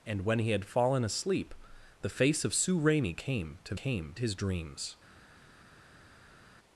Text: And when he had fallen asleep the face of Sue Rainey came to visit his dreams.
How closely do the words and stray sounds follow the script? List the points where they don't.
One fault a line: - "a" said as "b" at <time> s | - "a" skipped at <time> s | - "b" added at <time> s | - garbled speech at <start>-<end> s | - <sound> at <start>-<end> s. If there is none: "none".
- "visit" said as "came" at 3.7 s